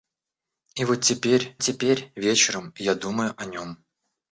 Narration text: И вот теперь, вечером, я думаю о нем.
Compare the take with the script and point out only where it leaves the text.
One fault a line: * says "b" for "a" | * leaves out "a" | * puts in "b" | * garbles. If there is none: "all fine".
* puts in "теперь"